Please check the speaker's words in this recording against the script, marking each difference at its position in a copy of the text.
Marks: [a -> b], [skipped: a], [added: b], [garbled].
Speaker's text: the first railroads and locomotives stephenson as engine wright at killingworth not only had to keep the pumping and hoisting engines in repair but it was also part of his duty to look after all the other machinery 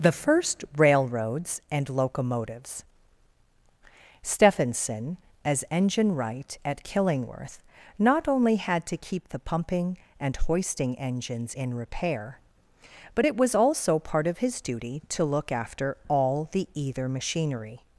the first railroads and locomotives stephenson as engine wright at killingworth not only had to keep the pumping and hoisting engines in repair but it was also part of his duty to look after all the [other -> either] machinery